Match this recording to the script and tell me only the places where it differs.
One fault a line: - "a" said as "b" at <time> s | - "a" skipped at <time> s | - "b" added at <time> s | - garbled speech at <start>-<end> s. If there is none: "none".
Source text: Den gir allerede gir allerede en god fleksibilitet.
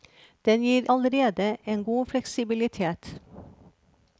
- "gir allerede" skipped at 1.6 s